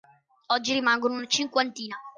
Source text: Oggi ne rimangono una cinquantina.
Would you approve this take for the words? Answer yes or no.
no